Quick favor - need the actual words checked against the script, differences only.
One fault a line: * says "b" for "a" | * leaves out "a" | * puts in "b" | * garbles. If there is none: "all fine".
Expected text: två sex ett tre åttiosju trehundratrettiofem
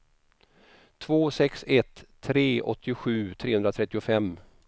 all fine